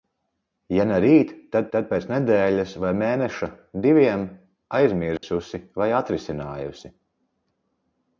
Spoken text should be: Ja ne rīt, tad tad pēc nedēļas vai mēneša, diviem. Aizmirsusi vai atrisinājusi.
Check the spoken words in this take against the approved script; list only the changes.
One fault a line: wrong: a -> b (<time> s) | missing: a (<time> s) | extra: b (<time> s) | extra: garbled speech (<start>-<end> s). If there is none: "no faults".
no faults